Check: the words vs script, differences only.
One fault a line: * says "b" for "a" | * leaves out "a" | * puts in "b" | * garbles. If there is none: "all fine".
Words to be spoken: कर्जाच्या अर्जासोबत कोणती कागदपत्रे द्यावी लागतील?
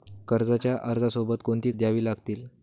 * leaves out "कागदपत्रे"